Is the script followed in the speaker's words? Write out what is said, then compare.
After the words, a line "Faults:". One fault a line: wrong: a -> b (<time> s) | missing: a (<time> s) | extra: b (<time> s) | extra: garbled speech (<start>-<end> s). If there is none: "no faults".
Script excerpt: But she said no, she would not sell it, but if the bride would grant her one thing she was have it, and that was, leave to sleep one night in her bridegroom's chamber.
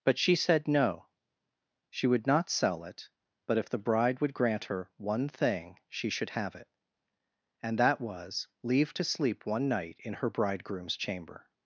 But she said no, she would not sell it, but if the bride would grant her one thing she should have it, and that was, leave to sleep one night in her bridegroom's chamber.
Faults:
wrong: was -> should (6.1 s)